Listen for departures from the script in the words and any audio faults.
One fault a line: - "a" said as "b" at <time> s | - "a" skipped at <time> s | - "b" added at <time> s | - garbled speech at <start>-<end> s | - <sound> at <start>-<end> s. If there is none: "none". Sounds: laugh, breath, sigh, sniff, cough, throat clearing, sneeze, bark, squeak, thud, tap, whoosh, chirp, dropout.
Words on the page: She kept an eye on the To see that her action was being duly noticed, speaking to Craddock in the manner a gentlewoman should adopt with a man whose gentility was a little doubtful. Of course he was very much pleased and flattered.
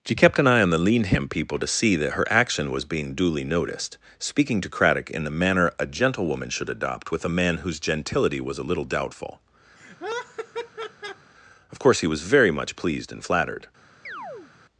- "Leanham people" added at 0.8 s
- laugh at 9.8-11.3 s
- chirp at 14.1-14.5 s